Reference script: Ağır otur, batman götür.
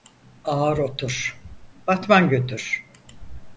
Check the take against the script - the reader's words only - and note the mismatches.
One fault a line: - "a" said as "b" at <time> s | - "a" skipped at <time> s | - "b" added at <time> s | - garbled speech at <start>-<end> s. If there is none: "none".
none